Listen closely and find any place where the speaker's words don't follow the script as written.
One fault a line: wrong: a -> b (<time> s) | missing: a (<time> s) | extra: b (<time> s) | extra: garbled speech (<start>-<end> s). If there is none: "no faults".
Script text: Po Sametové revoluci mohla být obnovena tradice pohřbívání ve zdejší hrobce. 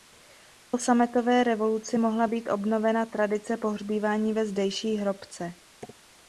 no faults